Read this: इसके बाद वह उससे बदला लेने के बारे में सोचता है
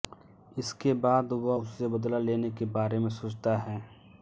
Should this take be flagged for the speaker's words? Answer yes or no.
no